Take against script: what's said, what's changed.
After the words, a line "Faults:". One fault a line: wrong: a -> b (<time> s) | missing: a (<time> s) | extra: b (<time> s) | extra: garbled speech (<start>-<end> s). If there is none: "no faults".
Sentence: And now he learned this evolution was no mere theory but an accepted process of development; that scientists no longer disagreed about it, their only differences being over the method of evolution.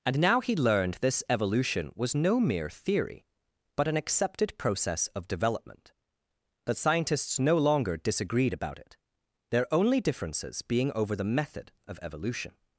And now he learned this evolution was no mere theory but an accepted process of development; that scientists no longer disagreed about it, their only differences being over the method of evolution.
Faults:
no faults